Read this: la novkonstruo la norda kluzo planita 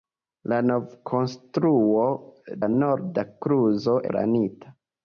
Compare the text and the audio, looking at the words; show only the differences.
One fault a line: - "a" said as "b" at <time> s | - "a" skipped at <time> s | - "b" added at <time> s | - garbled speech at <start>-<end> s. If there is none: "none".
none